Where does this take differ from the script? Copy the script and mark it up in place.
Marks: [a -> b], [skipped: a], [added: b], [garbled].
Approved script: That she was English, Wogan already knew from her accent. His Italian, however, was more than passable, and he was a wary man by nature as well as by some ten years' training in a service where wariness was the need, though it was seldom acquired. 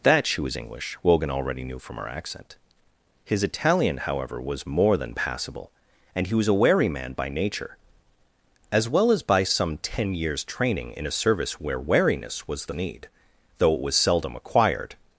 That she was English, Wogan already knew from her accent. His Italian, however, was more than passable, and he was a wary man by nature as well as by some ten years' training in a service where wariness was the need, though it was seldom acquired.